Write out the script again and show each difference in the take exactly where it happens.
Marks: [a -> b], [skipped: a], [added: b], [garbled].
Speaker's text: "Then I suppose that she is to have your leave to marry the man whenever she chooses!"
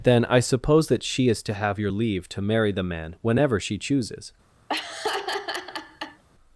"Then I suppose that she is to have your leave to marry the man whenever she chooses!"